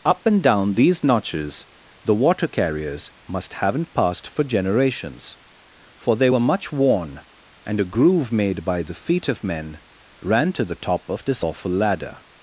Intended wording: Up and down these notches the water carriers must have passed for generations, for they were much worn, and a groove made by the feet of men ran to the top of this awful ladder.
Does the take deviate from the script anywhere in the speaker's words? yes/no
yes